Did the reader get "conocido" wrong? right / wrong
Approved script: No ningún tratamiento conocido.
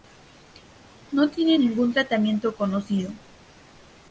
right